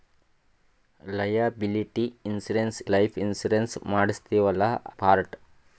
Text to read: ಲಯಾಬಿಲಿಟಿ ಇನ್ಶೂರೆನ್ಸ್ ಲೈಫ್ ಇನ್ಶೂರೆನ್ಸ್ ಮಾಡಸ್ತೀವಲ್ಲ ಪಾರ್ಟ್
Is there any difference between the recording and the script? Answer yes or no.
no